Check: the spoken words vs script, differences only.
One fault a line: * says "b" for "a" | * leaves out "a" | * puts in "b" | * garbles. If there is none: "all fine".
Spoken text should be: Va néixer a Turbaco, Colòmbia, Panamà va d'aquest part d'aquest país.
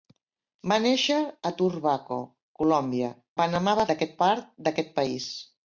all fine